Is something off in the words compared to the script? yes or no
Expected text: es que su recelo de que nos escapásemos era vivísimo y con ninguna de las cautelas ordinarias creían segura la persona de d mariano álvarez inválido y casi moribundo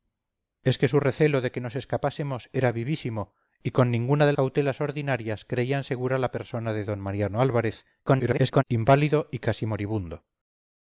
yes